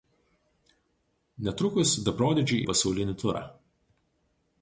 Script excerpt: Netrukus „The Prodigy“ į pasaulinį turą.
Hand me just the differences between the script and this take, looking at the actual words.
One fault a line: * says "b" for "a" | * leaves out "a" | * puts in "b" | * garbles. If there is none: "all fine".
all fine